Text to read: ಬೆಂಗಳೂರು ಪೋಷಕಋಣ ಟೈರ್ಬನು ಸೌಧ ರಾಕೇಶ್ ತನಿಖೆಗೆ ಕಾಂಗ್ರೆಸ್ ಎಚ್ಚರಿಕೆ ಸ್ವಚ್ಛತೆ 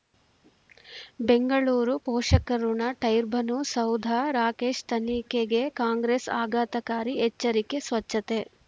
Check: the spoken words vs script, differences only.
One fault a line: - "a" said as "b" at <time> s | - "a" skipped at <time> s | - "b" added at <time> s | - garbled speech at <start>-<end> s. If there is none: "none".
- "ಆಘಾತಕಾರಿ" added at 6.4 s